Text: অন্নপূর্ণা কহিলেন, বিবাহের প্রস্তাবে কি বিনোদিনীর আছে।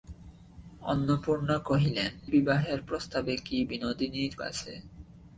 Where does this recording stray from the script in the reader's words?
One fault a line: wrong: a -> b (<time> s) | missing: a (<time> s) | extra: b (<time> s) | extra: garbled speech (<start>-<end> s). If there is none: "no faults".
no faults